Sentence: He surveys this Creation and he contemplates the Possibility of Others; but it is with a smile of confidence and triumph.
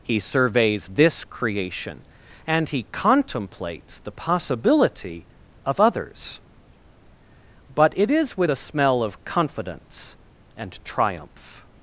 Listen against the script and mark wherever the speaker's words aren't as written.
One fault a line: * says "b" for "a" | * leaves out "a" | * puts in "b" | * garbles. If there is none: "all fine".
* says "smell" for "smile"